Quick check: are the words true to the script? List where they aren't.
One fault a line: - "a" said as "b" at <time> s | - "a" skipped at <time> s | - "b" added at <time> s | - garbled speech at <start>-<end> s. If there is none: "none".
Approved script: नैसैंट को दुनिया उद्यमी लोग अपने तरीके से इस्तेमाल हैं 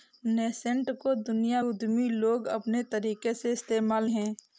none